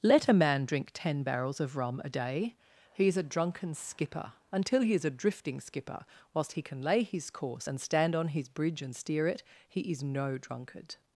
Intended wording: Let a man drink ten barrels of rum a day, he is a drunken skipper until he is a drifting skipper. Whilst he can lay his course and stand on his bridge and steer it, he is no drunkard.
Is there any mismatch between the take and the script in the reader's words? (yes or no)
no